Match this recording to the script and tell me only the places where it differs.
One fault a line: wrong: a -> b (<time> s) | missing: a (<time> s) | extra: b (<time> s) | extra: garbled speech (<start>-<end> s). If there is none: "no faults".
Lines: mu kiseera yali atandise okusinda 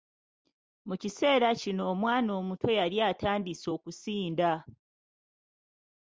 extra: kino omwana omuto (1.6 s)